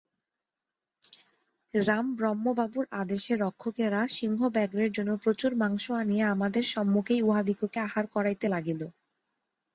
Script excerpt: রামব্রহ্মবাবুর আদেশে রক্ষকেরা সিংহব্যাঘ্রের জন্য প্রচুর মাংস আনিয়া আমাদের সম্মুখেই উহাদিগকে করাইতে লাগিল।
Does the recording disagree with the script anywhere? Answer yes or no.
yes